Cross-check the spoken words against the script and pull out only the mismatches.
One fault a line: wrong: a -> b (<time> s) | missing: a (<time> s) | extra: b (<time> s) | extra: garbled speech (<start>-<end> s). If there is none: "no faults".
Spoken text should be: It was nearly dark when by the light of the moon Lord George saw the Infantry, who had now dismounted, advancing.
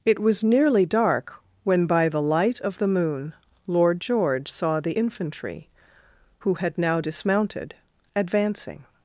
no faults